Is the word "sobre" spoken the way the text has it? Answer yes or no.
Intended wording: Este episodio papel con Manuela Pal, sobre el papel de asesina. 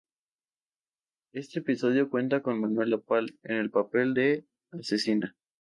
no